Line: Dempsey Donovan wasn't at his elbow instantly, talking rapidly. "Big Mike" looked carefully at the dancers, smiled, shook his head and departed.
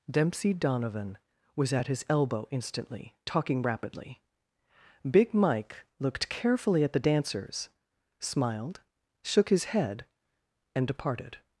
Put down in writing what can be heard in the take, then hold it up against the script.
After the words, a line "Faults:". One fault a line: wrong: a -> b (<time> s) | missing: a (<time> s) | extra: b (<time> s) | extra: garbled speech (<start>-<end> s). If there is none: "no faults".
Dempsey Donovan was at his elbow instantly, talking rapidly. "Big Mike" looked carefully at the dancers, smiled, shook his head and departed.
Faults:
wrong: wasn't -> was (1.6 s)